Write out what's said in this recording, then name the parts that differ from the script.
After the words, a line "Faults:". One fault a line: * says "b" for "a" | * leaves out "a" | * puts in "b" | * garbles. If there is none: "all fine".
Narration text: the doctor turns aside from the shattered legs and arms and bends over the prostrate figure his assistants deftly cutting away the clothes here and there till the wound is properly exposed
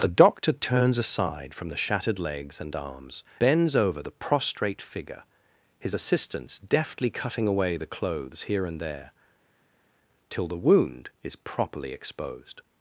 the doctor turns aside from the shattered legs and arms bends over the prostrate figure his assistants deftly cutting away the clothes here and there till the wound is properly exposed
Faults:
* leaves out "and"